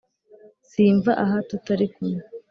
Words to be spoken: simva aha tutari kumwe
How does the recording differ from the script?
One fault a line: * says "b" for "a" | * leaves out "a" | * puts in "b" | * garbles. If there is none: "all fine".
all fine